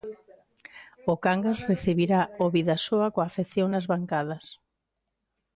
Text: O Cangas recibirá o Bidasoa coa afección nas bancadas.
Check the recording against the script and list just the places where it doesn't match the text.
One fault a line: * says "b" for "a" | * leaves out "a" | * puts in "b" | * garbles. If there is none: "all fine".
all fine